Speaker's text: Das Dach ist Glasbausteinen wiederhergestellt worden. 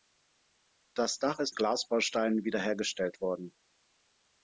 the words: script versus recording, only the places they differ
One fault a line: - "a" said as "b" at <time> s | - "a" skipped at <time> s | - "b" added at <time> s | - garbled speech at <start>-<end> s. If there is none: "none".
none